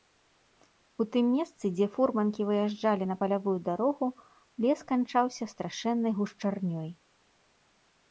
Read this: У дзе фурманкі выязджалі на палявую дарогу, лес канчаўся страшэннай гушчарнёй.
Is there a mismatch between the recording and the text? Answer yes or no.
yes